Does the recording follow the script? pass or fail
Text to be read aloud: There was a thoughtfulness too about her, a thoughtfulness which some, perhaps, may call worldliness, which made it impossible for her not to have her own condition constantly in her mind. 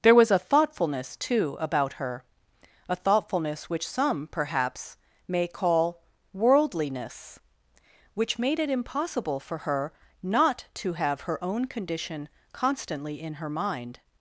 pass